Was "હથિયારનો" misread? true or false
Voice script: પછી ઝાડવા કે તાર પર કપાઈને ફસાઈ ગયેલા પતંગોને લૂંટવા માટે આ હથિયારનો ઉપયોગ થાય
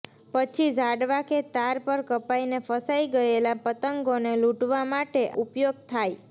true